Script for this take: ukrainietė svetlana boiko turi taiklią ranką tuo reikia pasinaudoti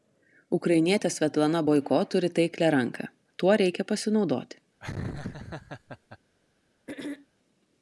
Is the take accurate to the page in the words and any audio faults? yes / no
no